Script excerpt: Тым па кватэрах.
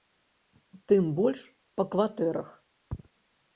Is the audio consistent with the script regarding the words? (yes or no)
no